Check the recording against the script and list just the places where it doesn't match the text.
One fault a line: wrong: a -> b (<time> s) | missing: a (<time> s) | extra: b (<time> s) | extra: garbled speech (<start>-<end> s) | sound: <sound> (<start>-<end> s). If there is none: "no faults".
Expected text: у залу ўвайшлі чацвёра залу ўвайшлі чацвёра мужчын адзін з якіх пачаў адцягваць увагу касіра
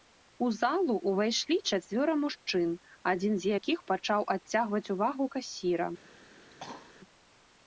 missing: залу ўвайшлі чацвёра (2.1 s)
sound: cough (6.4-6.9 s)